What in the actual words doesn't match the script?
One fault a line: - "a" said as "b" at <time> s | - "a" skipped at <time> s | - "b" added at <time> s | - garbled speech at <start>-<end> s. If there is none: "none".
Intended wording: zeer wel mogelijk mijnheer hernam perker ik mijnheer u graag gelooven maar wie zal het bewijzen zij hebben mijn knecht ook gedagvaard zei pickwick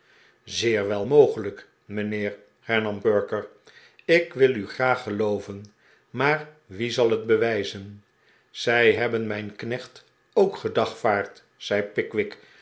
- "mijnheer" said as "wil" at 4.3 s